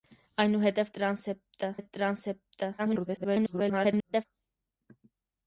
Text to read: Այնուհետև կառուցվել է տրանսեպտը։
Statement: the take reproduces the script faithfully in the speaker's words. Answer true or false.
false